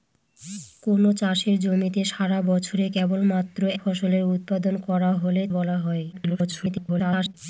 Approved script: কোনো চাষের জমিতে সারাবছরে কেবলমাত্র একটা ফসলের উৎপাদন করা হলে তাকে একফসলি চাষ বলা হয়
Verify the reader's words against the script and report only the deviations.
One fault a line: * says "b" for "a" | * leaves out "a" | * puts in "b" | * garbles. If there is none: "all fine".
* leaves out "একটা"
* leaves out "তাকে একফসলি চাষ"
* garbles